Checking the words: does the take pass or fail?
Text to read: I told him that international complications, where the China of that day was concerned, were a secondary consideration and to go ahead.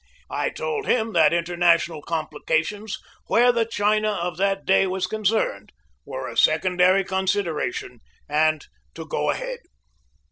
pass